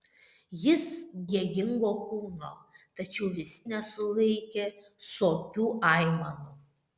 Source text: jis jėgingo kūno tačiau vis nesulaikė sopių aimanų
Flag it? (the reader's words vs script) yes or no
no